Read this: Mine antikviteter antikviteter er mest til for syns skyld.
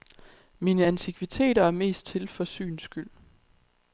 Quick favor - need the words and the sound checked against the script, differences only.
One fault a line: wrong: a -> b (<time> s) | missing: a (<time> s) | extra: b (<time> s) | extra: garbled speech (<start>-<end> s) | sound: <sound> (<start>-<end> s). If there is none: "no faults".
missing: antikviteter (1.6 s)